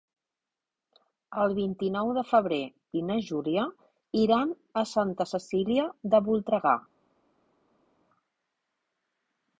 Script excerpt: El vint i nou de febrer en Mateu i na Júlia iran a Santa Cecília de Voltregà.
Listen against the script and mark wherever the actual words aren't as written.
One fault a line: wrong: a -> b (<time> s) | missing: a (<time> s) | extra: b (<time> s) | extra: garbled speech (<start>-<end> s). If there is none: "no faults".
missing: en Mateu (2.6 s)